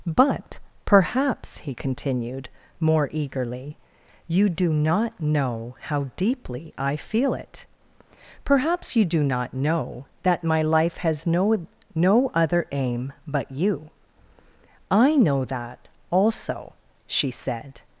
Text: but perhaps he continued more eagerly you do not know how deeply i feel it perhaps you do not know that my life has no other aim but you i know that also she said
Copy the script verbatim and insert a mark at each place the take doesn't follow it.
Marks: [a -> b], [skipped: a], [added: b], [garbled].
but perhaps he continued more eagerly you do not know how deeply i feel it perhaps you do not know that my life has no [added: no] other aim but you i know that also she said